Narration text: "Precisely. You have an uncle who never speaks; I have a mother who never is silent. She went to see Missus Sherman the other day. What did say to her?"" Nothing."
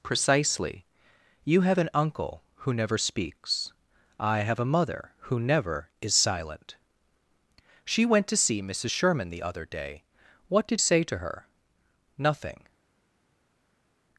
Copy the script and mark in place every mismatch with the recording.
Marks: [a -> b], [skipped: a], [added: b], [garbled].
"Precisely. You have an uncle who never speaks; I have a mother who never is silent. She went to see Missus Sherman the other day. What did say to her?"" Nothing."